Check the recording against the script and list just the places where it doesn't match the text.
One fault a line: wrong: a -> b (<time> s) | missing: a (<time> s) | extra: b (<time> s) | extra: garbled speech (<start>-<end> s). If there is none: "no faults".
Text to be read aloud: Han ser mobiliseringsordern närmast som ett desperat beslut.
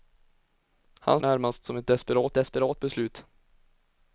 missing: ser mobiliseringsordern (1.2 s)
extra: desperat (2.3 s)